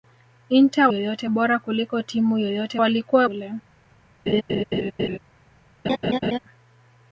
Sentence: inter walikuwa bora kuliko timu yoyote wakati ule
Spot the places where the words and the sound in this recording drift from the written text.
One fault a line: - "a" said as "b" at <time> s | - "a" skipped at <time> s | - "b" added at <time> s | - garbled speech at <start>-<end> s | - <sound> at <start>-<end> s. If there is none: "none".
- "walikuwa" said as "yoyote" at 0.9 s
- "wakati" said as "walikuwa" at 2.8 s
- laugh at 4.3-5.2 s
- laugh at 5.8-6.4 s